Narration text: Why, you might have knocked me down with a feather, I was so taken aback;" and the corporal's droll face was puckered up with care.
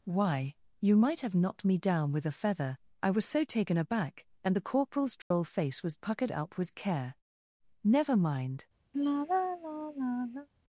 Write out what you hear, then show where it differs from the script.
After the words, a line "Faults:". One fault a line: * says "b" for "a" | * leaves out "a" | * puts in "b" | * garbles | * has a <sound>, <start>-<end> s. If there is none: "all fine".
Why, you might have knocked me down with a feather, I was so taken aback;" and the corporal's droll face was puckered up with care. "Never mind
Faults:
* has a dropout, 5.2-5.3 s
* puts in "Never mind"
* has a sigh, 8.9-10.5 s